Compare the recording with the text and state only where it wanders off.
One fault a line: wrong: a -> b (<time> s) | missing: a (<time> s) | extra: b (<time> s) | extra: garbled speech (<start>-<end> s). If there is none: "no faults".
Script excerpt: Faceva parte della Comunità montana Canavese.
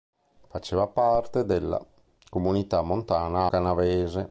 no faults